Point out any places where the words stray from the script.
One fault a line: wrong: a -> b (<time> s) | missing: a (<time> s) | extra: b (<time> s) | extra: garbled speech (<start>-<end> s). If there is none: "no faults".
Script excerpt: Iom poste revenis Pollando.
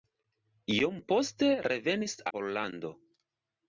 no faults